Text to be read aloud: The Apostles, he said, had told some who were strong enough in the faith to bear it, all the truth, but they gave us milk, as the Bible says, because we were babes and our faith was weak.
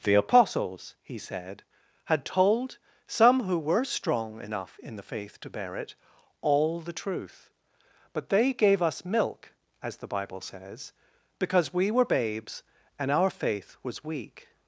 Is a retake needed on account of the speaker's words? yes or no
no